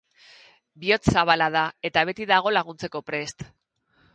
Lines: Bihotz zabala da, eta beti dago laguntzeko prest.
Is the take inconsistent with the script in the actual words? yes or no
no